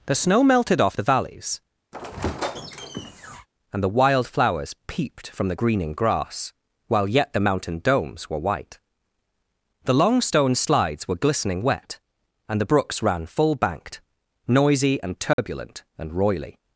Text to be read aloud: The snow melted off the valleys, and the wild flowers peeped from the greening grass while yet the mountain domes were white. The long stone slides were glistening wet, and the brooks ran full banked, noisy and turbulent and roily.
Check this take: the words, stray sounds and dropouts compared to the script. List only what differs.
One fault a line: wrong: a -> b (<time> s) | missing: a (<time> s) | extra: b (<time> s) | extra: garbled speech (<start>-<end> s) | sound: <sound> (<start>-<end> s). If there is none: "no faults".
sound: squeak (1.9-3.5 s)
sound: dropout (15.3-15.4 s)